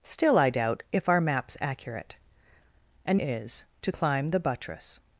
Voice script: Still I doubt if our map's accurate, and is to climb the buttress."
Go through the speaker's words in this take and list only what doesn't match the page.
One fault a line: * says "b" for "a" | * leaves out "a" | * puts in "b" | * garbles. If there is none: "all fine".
all fine